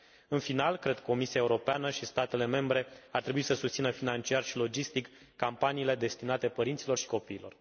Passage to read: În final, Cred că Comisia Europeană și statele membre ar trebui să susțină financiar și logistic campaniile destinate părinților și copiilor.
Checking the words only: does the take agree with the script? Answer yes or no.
yes